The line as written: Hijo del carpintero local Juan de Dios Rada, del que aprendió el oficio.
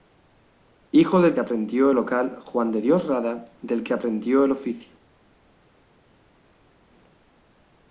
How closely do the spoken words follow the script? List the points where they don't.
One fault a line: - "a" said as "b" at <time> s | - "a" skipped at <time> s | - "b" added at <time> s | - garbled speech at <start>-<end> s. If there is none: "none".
- "carpintero" said as "aprendió" at 1.4 s